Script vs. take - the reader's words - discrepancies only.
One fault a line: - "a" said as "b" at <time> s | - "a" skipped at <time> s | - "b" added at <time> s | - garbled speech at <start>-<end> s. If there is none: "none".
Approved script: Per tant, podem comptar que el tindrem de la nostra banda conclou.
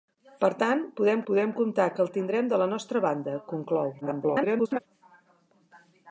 - "podem" added at 1.3 s
- garbled speech at 4.0-4.8 s